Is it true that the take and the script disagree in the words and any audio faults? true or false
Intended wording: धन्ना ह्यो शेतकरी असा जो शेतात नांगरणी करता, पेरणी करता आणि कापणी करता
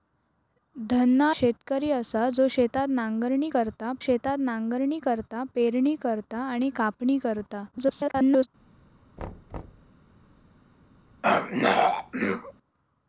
true